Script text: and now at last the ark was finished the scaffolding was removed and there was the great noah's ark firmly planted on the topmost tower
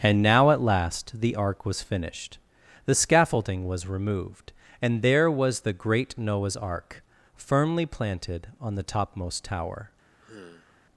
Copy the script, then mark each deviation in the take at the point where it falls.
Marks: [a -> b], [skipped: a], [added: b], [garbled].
and now at last the ark was finished the scaffolding was removed and there was the great noah's ark firmly planted on the topmost tower